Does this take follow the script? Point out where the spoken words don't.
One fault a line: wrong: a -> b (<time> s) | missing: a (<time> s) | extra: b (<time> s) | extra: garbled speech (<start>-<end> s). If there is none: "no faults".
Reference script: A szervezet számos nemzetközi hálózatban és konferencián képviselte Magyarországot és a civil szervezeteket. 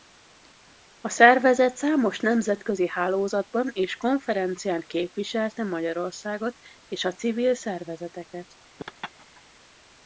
no faults